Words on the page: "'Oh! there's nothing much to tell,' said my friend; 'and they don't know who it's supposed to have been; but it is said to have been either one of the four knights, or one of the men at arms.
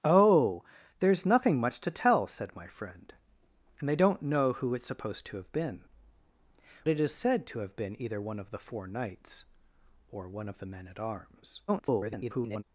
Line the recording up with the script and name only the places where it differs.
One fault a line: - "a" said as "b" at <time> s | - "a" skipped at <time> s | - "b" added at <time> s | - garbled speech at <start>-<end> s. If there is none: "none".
- "but" skipped at 5.8 s
- garbled speech at 11.7-12.6 s